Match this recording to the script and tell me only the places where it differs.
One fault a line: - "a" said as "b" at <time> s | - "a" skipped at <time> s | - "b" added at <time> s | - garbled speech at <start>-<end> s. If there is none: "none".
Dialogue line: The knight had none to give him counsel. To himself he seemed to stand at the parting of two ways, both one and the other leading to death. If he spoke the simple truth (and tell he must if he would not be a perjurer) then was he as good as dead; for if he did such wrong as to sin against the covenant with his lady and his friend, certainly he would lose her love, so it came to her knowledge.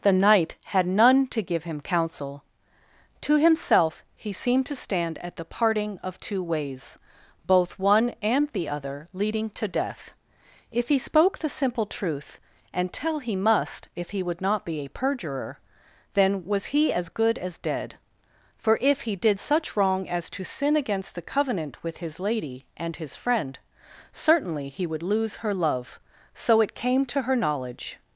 none